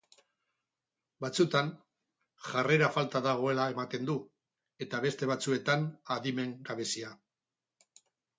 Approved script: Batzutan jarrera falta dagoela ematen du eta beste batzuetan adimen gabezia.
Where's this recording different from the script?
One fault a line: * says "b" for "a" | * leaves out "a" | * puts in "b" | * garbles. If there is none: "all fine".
all fine